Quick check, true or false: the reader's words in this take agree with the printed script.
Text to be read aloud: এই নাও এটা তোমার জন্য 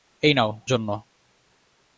false